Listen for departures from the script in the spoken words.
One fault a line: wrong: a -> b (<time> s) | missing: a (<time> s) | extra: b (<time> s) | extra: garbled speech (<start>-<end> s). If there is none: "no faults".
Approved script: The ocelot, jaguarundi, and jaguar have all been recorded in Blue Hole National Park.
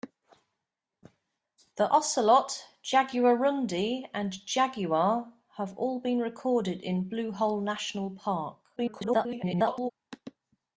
extra: garbled speech (8.8-9.9 s)